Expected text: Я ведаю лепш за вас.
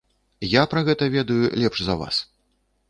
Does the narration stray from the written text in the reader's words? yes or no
yes